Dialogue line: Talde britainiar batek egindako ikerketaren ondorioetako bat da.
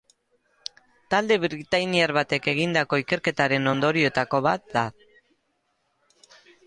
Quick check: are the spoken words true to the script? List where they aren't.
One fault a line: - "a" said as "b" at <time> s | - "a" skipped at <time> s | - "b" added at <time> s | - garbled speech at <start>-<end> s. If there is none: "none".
none